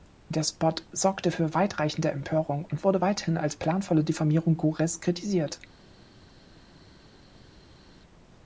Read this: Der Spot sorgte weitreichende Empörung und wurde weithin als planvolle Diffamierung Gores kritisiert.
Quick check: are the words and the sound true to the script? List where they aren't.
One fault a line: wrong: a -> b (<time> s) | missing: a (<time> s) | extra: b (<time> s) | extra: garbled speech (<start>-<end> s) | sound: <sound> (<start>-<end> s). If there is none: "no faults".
extra: für (1.3 s)